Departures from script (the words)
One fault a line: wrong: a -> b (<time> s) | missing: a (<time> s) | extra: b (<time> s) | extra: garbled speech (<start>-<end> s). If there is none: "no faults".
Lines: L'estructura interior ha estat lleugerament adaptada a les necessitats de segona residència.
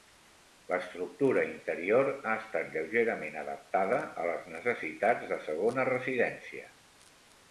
no faults